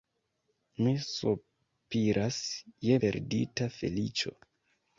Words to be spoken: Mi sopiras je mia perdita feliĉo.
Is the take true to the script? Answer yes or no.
no